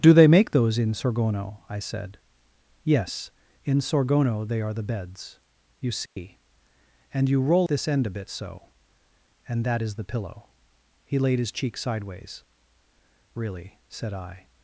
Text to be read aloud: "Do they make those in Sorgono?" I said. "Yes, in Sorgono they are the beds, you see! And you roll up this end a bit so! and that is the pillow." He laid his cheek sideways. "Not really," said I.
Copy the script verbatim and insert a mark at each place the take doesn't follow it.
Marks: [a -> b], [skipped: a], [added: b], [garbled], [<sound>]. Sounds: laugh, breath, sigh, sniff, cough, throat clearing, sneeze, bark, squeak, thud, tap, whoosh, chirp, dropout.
"Do they make those in Sorgono?" I said. "Yes, in Sorgono they are the beds, you see! [dropout] And you roll [skipped: up] this end a bit so! and that is the pillow." He laid his cheek sideways. [skipped: "Not] really," said I.